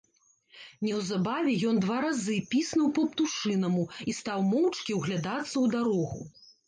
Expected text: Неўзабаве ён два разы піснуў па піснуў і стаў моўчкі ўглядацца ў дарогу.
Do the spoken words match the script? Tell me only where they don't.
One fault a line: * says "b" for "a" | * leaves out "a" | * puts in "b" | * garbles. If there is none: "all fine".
* says "птушынаму" for "піснуў"